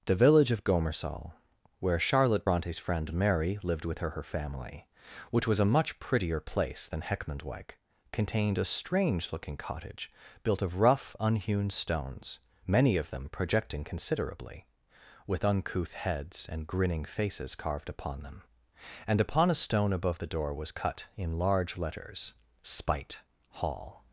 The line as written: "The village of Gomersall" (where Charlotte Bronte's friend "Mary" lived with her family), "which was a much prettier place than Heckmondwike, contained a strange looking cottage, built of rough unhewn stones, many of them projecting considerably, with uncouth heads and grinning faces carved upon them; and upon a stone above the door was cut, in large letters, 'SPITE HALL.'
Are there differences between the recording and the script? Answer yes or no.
yes